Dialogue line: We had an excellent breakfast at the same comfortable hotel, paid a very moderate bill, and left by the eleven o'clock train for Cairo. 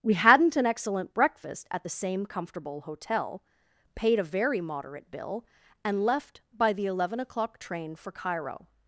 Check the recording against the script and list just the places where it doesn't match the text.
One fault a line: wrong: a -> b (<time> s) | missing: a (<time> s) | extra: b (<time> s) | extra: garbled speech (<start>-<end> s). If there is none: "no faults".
wrong: had -> hadn't (0.1 s)